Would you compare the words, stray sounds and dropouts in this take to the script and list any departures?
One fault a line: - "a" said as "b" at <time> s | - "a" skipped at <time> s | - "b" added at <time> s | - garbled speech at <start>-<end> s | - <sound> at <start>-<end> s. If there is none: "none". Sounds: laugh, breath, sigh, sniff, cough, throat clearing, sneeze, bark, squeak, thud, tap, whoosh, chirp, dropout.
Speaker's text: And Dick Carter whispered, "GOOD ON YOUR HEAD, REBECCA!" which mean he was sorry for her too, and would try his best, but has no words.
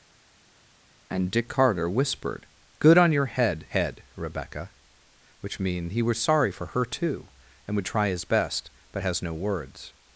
- "HEAD" added at 3.7 s